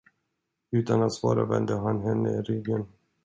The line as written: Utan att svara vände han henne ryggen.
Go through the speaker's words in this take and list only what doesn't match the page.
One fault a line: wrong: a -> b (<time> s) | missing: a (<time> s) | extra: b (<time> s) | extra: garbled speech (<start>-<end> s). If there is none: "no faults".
no faults